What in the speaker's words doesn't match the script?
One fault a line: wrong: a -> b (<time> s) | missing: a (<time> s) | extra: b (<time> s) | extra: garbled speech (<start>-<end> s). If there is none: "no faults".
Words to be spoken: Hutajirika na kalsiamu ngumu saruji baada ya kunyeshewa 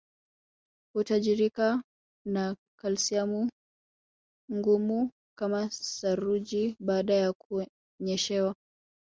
extra: kama (5.4 s)